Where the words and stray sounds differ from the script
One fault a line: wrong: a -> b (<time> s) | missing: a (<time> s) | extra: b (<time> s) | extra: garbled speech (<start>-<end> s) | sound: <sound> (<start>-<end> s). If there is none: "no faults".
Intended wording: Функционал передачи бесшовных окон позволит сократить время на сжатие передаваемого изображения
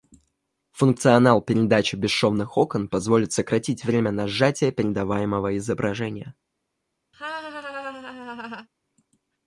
sound: laugh (7.1-8.7 s)